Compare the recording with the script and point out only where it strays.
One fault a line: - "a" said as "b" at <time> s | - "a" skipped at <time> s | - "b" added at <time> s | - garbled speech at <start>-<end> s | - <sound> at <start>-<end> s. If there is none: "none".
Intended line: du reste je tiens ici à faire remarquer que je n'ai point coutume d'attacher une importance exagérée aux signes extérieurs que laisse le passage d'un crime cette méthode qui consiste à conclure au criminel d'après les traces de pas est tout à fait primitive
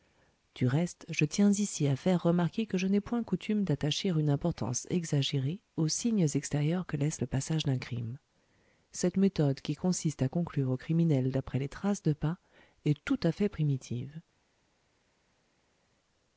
none